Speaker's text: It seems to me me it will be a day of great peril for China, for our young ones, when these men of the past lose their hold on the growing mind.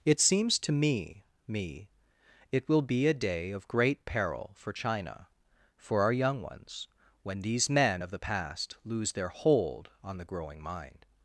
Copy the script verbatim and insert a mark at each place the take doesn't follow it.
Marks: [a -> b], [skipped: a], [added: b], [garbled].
It seems to me me it will be a day of great peril for China, for our young ones, when these men of the past lose their hold on the growing mind.